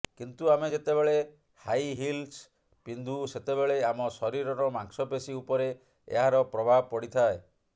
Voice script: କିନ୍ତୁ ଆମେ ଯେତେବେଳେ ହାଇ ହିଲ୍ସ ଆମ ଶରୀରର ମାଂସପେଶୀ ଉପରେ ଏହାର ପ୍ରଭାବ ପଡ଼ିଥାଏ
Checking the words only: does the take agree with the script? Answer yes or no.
no